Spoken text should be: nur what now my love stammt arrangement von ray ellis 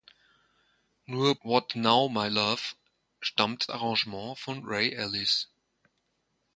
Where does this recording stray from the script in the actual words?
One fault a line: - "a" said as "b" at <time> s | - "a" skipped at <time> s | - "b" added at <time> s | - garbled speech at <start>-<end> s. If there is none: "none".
none